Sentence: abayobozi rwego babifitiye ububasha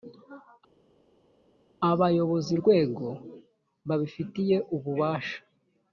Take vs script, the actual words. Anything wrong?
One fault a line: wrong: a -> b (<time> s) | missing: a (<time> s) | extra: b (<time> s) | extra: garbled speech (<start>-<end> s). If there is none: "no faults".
no faults